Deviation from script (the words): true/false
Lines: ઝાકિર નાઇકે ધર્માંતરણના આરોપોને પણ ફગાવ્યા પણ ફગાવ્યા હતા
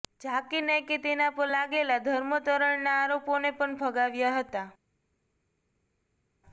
true